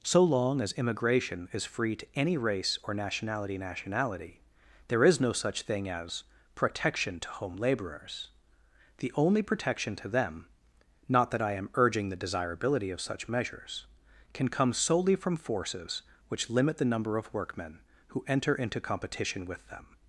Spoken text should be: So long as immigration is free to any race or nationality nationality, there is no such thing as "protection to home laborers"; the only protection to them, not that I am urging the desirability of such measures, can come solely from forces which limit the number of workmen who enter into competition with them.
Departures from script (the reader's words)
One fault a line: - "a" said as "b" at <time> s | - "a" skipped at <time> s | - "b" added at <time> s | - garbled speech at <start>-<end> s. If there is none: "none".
none